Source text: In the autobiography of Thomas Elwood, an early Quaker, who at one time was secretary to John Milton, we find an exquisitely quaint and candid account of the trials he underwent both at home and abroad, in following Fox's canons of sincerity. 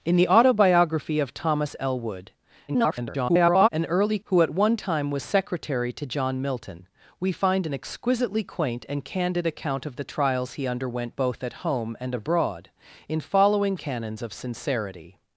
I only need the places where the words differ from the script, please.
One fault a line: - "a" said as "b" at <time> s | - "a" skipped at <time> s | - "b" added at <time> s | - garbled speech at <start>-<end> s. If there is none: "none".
- garbled speech at 2.7-3.7 s
- "Quaker" skipped at 4.2 s
- "Fox's" skipped at 13.8 s